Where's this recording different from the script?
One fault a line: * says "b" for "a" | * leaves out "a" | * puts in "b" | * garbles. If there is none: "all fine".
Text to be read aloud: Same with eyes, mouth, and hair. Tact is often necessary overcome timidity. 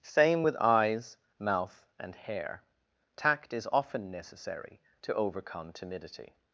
* puts in "to"